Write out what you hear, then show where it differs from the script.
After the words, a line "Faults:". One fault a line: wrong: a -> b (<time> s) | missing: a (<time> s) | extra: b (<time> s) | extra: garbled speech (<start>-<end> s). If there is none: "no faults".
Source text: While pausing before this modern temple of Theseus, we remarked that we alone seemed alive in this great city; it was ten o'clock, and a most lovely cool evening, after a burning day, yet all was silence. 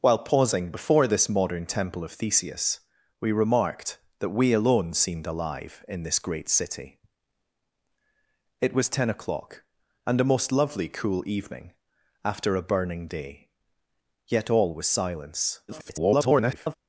While pausing before this modern temple of Theseus, we remarked that we alone seemed alive in this great city; it was ten o'clock, and a most lovely cool evening, after a burning day, yet all was silence. [garbled]
Faults:
extra: garbled speech (15.7-16.7 s)